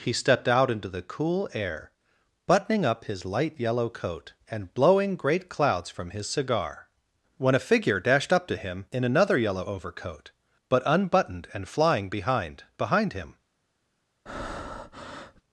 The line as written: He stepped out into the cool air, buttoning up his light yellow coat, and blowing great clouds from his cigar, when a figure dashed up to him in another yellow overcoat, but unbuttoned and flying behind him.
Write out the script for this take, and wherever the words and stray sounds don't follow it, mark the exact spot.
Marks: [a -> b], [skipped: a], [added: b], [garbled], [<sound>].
He stepped out into the cool air, buttoning up his light yellow coat, and blowing great clouds from his cigar, when a figure dashed up to him in another yellow overcoat, but unbuttoned and flying behind [added: behind] him. [breath]